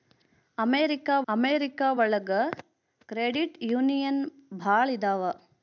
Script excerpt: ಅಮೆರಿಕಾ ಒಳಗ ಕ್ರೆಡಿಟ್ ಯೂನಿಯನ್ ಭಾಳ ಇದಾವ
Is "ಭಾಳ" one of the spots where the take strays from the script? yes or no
no